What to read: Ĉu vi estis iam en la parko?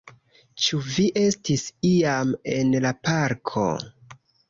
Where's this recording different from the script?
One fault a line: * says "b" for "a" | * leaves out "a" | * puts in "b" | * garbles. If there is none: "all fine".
all fine